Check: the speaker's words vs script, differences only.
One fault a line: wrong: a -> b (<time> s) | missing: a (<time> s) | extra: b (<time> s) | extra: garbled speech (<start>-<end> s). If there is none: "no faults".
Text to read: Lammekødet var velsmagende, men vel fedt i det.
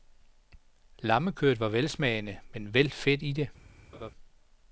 no faults